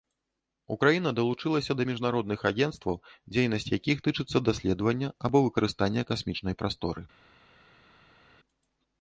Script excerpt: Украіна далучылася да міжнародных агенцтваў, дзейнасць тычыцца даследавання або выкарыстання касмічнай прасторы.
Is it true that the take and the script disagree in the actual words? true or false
true